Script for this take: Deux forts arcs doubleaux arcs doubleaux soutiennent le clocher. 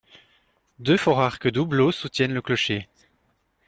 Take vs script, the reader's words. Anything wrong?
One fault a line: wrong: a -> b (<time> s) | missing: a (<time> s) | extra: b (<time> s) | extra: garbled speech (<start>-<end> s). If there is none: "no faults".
missing: arcs doubleaux (1.9 s)